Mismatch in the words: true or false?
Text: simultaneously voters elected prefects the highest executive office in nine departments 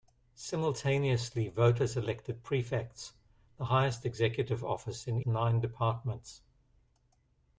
false